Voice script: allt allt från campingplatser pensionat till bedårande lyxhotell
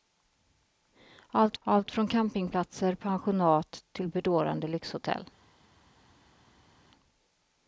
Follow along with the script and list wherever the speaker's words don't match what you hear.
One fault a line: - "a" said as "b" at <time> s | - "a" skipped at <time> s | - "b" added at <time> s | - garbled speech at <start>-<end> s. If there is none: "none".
none